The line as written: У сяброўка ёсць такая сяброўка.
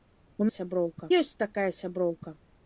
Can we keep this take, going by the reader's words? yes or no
yes